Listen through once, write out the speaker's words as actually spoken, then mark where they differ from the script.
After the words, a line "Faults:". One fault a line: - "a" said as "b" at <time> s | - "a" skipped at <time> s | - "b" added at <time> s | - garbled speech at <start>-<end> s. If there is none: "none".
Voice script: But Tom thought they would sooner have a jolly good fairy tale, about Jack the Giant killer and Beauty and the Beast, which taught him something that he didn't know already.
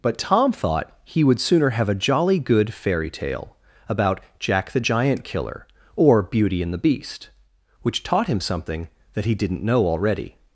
But Tom thought he would sooner have a jolly good fairy tale, about Jack the Giant killer or Beauty and the Beast, which taught him something that he didn't know already.
Faults:
- "they" said as "he" at 1.0 s
- "and" said as "or" at 6.0 s